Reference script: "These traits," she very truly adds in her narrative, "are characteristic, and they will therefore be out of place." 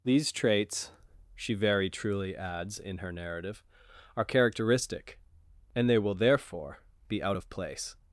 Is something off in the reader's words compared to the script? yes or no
no